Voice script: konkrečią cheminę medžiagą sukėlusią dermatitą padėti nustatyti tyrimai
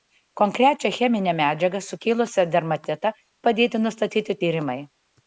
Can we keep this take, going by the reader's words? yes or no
yes